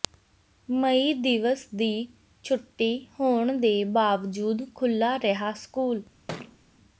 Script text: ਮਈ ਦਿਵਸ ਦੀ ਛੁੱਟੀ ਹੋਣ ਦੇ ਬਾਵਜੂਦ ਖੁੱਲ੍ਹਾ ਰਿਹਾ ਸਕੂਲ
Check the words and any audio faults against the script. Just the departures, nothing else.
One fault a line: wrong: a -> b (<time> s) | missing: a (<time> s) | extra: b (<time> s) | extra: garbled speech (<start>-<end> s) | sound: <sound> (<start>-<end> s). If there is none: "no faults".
sound: thud (6.3-6.6 s)